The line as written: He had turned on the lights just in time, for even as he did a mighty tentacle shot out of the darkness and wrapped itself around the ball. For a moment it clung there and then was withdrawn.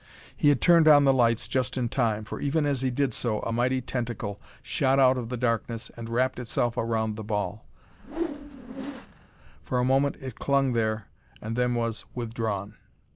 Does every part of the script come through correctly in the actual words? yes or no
no